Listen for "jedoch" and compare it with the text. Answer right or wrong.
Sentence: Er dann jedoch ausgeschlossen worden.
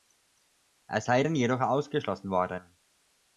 right